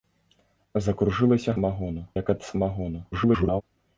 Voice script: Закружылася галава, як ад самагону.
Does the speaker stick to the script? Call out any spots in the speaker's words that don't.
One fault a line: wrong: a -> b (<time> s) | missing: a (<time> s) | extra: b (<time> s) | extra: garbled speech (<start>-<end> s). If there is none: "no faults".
wrong: галава -> самагону (1.5 s)
extra: garbled speech (3.1-3.6 s)